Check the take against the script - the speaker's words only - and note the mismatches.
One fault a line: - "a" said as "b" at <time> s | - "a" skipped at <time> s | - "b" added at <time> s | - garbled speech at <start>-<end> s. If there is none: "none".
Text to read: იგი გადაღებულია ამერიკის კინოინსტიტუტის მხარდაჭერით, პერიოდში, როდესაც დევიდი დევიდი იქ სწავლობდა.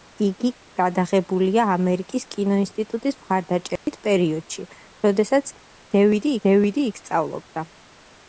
none